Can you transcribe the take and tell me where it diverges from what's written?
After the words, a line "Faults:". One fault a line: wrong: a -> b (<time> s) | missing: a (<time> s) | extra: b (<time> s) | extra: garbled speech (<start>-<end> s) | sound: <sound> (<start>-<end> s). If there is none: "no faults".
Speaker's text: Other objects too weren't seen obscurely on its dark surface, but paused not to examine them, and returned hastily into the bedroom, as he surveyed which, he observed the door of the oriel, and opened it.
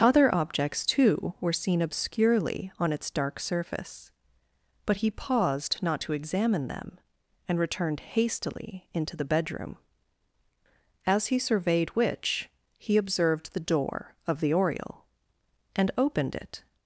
Other objects too were seen obscurely on its dark surface, but he paused not to examine them, and returned hastily into the bedroom, as he surveyed which, he observed the door of the oriel, and opened it.
Faults:
wrong: weren't -> were (1.4 s)
extra: he (5.0 s)